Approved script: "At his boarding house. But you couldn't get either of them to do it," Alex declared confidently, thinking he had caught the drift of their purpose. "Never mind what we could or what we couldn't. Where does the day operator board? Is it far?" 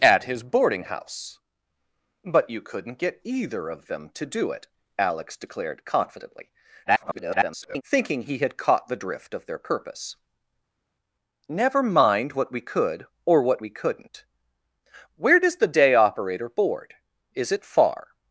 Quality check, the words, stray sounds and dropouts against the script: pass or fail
fail